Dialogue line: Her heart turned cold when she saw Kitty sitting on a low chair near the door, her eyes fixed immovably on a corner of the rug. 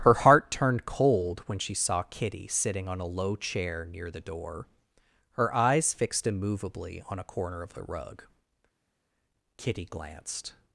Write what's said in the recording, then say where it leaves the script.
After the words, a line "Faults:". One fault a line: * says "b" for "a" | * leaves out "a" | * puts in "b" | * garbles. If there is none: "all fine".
Her heart turned cold when she saw Kitty sitting on a low chair near the door, her eyes fixed immovably on a corner of the rug. Kitty glanced
Faults:
* puts in "Kitty glanced"